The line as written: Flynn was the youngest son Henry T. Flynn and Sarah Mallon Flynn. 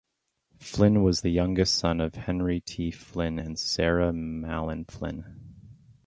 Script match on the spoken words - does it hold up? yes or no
no